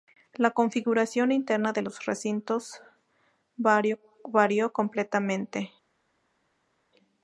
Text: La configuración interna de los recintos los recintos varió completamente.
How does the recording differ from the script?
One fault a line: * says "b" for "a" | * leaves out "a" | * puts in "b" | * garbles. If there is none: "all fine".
* leaves out "los recintos"